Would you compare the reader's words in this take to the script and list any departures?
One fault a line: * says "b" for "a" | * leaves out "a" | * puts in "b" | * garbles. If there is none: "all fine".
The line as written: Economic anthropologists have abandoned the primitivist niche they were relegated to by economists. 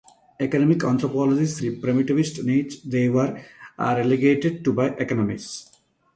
* leaves out "have abandoned"